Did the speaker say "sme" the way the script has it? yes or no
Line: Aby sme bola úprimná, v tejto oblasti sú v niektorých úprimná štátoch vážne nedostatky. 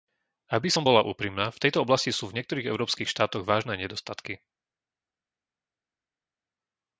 no